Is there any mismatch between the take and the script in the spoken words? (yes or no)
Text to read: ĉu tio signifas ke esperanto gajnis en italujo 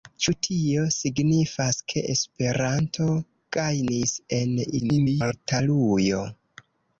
yes